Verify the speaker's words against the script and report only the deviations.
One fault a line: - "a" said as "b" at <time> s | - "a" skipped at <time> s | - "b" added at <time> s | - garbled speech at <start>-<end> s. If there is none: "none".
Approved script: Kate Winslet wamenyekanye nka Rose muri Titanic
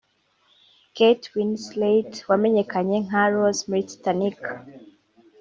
none